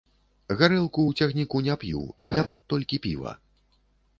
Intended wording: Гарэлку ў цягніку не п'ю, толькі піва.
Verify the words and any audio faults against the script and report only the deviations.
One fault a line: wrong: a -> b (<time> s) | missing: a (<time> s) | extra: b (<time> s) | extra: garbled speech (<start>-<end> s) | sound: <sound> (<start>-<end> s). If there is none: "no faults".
sound: laugh (2.3-2.5 s)